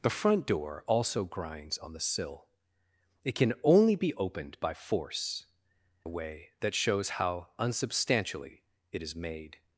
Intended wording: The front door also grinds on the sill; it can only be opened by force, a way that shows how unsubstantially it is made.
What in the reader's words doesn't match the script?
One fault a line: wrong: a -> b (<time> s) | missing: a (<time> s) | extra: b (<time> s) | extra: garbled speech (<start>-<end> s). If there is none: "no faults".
no faults